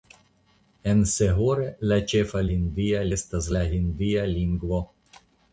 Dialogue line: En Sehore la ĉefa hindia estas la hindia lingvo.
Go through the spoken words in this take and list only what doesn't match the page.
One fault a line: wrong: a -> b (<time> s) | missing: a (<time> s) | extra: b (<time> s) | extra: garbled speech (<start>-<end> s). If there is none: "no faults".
no faults